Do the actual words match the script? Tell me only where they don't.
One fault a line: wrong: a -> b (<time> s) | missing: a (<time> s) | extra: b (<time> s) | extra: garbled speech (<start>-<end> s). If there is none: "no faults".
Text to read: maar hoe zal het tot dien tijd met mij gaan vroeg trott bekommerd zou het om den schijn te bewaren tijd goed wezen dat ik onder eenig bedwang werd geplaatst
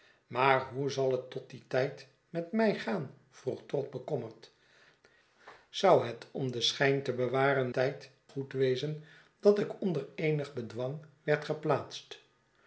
no faults